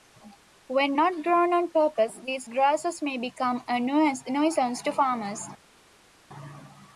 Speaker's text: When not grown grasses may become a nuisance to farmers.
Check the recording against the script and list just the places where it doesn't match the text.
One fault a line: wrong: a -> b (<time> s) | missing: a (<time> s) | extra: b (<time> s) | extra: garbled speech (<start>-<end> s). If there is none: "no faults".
extra: on purpose these (1.5 s)